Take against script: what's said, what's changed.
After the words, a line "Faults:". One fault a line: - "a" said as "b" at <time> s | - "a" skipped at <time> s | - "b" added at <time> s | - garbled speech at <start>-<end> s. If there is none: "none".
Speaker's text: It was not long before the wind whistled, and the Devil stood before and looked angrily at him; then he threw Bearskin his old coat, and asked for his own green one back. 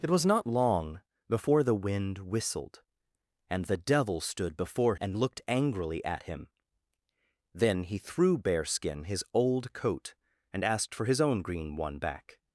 It was not long before the wind whistled, and the Devil stood before and looked angrily at him; then he threw Bearskin his old coat, and asked for his own green one back.
Faults:
none